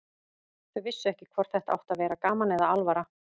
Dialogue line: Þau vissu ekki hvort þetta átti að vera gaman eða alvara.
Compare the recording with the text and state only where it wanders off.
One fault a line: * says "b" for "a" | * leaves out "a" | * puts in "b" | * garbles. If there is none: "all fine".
all fine